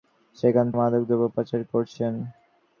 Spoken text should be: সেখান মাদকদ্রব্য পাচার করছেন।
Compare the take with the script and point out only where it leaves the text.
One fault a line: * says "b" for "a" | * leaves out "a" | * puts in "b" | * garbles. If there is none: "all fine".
all fine